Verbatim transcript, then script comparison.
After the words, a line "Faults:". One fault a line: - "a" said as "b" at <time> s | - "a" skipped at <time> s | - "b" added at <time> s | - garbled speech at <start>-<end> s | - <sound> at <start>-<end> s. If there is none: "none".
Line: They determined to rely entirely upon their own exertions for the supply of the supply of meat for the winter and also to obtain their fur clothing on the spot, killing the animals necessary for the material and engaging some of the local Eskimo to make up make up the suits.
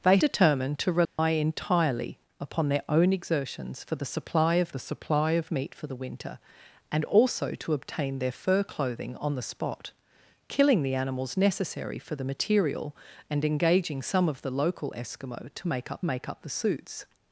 They determined to rely entirely upon their own exertions for the supply of the supply of meat for the winter and also to obtain their fur clothing on the spot, killing the animals necessary for the material and engaging some of the local Eskimo to make up make up the suits.
Faults:
- dropout at 1.0-1.2 s